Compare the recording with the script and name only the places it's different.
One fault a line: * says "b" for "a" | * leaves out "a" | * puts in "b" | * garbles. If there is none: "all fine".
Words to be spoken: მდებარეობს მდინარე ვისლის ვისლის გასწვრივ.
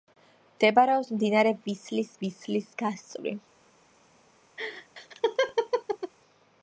all fine